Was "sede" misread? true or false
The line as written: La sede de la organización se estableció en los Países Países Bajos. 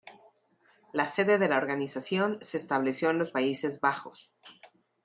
false